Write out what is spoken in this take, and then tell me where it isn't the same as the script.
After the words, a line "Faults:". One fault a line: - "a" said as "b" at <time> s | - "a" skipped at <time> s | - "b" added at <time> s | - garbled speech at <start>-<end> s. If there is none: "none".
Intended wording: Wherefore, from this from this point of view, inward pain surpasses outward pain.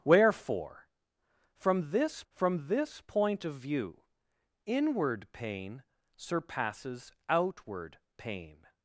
Wherefore, from this from this point of view, inward pain surpasses outward pain.
Faults:
none